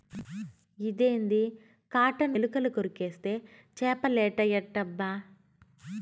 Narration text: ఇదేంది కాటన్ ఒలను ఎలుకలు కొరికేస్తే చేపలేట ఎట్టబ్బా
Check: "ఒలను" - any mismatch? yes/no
yes